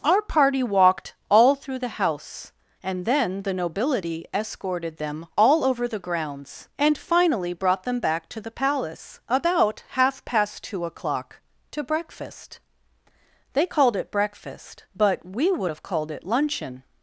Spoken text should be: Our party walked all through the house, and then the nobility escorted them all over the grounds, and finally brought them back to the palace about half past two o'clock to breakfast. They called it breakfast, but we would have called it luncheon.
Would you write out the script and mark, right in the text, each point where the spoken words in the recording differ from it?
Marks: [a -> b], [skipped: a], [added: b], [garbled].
Our party walked all through the house, and then the nobility escorted them all over the grounds, and finally brought them back to the palace about half past two o'clock to breakfast. They called it breakfast, but we would have called it luncheon.